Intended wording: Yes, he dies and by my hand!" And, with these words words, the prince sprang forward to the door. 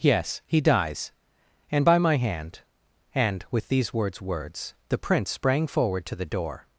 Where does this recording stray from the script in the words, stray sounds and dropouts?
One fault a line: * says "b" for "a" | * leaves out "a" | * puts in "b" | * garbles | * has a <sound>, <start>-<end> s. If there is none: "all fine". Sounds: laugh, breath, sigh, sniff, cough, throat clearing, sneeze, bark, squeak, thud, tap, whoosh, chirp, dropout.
all fine